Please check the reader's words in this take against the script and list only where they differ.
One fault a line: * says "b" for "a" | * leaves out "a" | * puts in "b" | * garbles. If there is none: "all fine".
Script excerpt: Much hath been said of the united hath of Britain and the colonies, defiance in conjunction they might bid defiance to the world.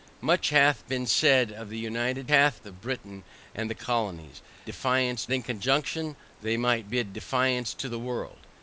all fine